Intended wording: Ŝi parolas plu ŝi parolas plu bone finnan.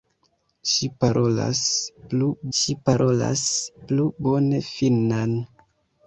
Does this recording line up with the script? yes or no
yes